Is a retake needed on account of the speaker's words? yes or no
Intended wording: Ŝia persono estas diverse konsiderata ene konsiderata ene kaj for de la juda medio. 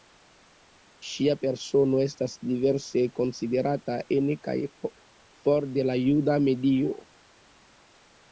yes